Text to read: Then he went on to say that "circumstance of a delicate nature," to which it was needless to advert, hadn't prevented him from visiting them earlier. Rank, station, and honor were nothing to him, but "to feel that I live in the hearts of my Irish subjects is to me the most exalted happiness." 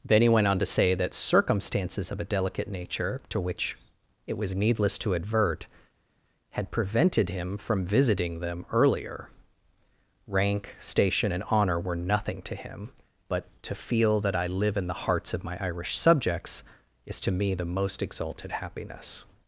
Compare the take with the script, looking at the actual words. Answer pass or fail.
fail